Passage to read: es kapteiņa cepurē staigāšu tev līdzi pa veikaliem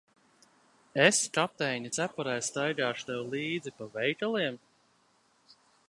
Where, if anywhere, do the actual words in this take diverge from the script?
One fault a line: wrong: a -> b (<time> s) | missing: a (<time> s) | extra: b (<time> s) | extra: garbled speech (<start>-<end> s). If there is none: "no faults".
no faults